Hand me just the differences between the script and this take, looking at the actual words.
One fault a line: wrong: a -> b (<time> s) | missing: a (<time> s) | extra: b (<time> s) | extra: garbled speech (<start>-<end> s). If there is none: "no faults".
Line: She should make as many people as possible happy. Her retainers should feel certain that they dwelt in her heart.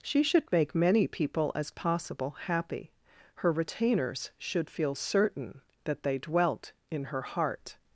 missing: as (0.7 s)